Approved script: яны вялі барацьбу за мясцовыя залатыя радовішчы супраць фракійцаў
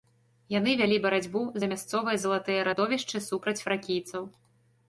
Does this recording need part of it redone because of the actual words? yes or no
no